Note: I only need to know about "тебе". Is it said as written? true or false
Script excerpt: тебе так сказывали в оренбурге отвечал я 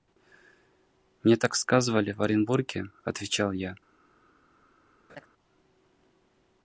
false